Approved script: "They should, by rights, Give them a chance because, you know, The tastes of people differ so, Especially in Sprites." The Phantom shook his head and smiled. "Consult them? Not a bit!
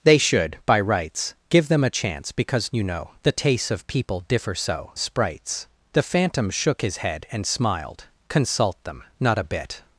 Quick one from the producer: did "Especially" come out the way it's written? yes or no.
no